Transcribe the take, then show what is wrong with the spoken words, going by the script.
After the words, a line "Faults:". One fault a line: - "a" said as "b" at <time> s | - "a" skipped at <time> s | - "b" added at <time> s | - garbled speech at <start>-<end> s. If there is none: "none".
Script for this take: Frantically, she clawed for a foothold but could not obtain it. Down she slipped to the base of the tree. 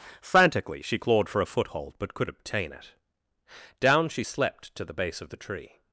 Frantically, she clawed for a foothold but could obtain it. Down she slept to the base of the tree.
Faults:
- "not" skipped at 2.3 s
- "slipped" said as "slept" at 4.2 s